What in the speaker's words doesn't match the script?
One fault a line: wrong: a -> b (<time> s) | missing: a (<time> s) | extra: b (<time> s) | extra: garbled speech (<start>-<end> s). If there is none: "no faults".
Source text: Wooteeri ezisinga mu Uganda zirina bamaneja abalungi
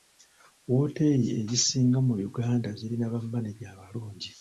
no faults